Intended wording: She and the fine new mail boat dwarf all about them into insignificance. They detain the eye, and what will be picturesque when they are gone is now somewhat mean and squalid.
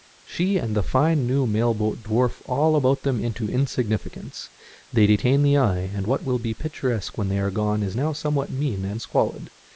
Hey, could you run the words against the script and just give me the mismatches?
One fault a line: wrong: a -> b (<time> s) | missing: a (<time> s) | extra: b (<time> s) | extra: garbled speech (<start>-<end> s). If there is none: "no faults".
no faults